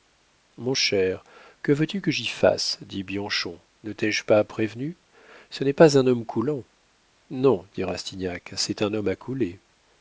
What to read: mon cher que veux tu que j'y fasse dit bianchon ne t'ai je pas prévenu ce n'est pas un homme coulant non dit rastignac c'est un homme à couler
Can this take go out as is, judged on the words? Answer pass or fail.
pass